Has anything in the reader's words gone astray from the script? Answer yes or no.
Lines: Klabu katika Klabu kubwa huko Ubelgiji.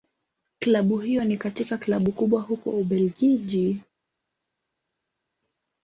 yes